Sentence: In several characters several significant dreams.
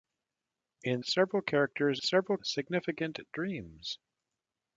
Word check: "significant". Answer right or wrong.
right